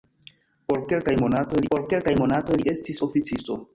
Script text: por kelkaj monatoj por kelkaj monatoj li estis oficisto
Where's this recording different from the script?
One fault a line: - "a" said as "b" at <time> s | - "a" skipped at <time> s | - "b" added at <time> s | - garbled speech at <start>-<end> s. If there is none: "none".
none